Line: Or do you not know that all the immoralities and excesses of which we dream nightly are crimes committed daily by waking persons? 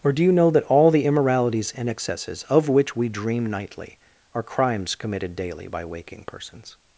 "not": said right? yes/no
no